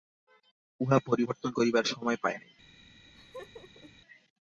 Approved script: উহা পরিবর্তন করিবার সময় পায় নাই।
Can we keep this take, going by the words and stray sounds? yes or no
no